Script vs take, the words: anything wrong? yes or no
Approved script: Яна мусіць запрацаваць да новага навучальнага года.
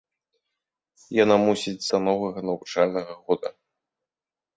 yes